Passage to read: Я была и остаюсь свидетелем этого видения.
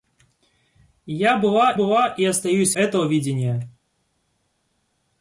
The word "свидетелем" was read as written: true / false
false